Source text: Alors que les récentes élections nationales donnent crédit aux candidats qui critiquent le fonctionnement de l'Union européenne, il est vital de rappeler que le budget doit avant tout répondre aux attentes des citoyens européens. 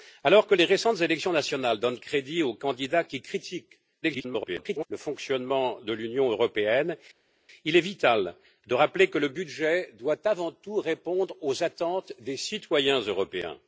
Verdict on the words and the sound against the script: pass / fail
fail